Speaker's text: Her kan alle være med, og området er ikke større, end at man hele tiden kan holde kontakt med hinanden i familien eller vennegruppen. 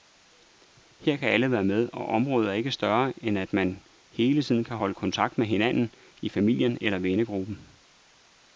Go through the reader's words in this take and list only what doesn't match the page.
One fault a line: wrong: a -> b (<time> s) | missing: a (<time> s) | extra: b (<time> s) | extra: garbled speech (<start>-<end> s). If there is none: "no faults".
no faults